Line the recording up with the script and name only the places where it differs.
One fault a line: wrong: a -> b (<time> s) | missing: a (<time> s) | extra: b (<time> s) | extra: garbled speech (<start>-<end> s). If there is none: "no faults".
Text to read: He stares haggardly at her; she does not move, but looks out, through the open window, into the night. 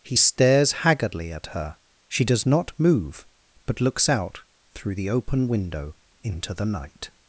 no faults